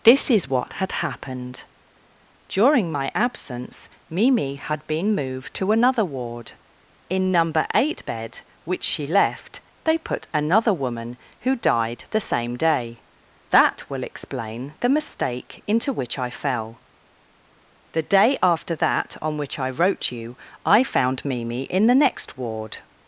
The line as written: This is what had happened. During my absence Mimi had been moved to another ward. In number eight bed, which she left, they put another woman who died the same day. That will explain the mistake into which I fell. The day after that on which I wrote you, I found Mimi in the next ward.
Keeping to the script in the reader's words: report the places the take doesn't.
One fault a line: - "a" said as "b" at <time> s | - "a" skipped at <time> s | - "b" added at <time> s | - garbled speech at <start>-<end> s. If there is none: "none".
none